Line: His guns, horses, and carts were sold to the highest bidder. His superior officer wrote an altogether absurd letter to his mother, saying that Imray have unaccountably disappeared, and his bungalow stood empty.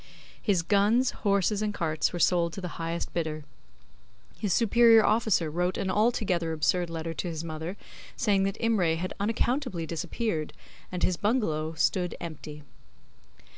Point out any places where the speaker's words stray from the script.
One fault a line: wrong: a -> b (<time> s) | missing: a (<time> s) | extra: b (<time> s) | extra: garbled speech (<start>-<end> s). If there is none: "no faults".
wrong: have -> had (9.0 s)